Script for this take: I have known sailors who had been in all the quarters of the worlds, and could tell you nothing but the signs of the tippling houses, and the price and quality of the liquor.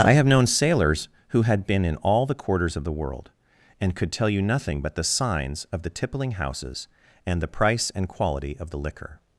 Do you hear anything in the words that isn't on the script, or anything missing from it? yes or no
yes